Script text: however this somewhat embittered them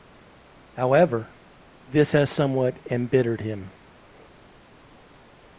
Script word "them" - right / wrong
wrong